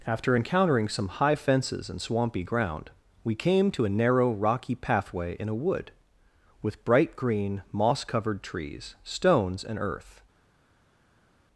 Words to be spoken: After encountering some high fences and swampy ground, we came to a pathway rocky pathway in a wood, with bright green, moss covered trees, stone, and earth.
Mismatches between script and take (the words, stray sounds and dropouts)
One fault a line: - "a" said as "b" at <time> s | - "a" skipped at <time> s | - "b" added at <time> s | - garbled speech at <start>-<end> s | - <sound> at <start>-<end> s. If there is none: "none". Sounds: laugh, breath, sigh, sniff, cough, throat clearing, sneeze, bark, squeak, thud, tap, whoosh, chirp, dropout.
- "pathway" said as "narrow" at 3.9 s
- "stone" said as "stones" at 9.0 s